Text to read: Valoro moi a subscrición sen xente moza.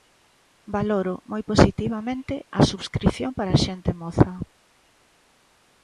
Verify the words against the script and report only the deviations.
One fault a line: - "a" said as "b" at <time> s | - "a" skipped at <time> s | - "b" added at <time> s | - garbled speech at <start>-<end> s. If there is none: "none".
- "positivamente" added at 1.5 s
- "sen" said as "para" at 3.4 s